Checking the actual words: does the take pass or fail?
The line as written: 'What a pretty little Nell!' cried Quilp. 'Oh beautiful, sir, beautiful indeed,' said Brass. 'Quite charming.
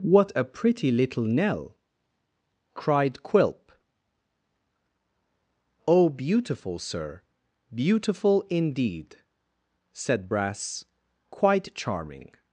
pass